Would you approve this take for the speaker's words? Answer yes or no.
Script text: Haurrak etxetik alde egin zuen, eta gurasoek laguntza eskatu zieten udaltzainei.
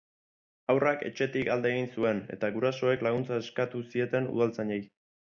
yes